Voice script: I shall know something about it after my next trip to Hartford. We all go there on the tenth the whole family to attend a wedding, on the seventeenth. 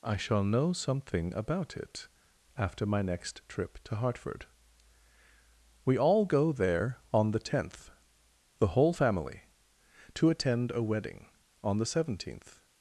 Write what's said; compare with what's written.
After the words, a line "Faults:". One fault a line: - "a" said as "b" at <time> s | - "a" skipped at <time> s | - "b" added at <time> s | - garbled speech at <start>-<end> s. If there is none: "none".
I shall know something about it after my next trip to Hartford. We all go there on the tenth the whole family to attend a wedding, on the seventeenth.
Faults:
none